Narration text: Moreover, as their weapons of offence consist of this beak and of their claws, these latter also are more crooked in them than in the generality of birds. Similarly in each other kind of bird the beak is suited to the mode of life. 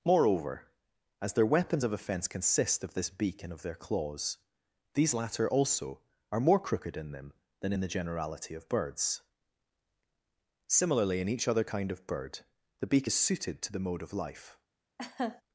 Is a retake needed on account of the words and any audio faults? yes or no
yes